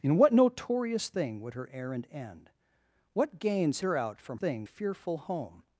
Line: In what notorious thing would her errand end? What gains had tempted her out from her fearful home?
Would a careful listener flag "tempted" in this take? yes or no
yes